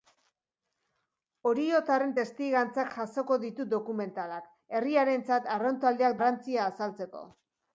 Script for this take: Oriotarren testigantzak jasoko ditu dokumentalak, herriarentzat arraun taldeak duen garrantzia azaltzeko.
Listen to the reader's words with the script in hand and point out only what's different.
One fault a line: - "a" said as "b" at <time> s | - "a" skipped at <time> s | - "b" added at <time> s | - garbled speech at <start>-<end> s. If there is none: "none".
- "duen" skipped at 6.2 s